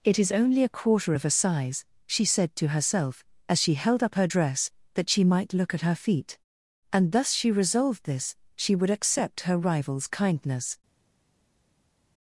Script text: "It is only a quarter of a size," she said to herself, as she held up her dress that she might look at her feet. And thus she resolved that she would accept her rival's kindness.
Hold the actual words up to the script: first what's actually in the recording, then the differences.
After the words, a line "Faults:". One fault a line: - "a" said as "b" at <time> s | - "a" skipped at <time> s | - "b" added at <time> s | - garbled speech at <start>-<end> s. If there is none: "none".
"It is only a quarter of a size," she said to herself, as she held up her dress that she might look at her feet. And thus she resolved this she would accept her rival's kindness.
Faults:
- "that" said as "this" at 8.0 s